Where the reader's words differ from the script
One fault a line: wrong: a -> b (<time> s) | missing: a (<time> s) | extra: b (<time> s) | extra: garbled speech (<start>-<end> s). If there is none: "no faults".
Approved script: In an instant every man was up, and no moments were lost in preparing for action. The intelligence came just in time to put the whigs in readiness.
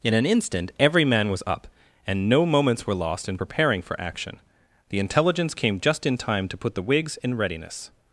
no faults